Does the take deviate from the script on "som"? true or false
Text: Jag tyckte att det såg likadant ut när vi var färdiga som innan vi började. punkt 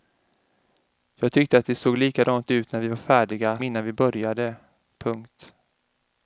true